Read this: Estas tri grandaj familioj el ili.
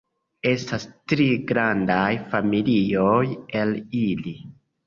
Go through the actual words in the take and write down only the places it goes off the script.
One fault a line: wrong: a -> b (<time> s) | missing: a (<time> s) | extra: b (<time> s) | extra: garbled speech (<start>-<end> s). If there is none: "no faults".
no faults